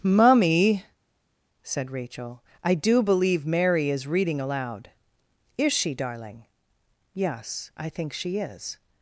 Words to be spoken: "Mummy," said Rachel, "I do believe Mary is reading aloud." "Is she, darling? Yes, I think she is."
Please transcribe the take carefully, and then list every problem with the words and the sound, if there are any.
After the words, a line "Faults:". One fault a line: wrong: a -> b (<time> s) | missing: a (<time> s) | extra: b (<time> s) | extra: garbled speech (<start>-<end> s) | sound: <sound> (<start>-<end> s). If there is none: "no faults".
"Mummy," said Rachel, "I do believe Mary is reading aloud." "Is she, darling? Yes, I think she is."
Faults:
no faults